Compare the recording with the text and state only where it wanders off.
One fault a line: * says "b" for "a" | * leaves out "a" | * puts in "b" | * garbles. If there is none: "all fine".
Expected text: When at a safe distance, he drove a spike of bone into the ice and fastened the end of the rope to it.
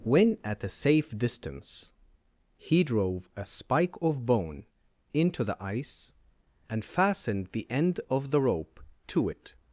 all fine